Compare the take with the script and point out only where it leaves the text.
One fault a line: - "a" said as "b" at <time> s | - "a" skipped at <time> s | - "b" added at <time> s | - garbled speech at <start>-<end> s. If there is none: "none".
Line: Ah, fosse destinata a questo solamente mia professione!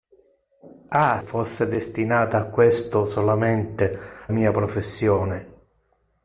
none